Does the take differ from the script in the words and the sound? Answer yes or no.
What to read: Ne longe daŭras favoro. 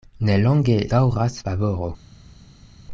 no